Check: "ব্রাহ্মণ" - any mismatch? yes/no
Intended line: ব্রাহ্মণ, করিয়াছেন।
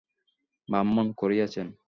no